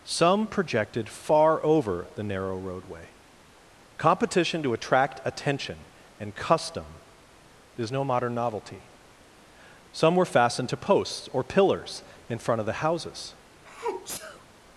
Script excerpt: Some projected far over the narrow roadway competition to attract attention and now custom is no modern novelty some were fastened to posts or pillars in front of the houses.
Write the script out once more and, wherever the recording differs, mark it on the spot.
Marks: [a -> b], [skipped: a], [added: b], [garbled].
Some projected far over the narrow roadway competition to attract attention and [skipped: now] custom is no modern novelty some were fastened to posts or pillars in front of the houses.